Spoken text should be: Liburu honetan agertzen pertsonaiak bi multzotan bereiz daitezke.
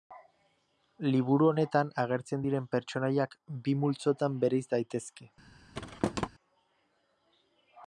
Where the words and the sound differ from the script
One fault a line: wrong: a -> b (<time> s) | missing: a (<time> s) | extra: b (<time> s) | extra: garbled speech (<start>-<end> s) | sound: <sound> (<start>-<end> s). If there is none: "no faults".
extra: diren (2.4 s)
sound: thud (5.7-6.3 s)